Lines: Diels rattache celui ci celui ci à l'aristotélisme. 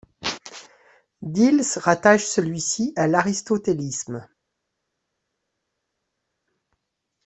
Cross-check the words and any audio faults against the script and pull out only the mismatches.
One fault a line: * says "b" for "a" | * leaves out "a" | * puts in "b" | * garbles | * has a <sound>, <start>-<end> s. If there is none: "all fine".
* leaves out "celui ci"